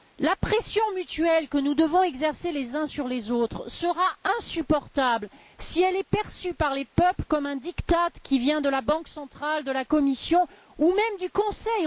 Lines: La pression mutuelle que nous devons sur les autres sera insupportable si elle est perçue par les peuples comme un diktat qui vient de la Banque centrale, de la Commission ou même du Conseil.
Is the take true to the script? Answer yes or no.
no